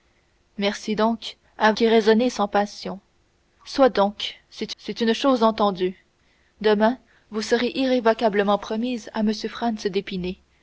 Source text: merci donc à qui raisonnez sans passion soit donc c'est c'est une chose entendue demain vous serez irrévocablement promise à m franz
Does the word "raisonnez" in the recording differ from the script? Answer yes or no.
no